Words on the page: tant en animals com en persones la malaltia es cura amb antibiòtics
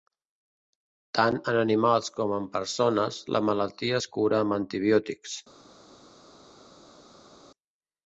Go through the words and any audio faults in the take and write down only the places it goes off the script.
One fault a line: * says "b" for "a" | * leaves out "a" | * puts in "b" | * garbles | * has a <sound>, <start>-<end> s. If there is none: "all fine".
all fine